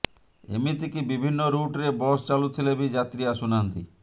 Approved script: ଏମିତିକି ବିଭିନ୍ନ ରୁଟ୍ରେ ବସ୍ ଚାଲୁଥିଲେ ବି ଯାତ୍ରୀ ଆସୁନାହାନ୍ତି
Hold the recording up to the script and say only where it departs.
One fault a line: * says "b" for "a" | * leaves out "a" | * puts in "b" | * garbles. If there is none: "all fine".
all fine